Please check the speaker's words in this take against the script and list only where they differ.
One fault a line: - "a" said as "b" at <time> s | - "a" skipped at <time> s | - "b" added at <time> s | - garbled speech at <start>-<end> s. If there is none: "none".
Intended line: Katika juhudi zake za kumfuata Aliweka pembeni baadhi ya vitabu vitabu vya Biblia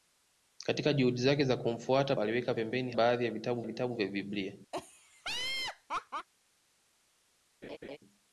none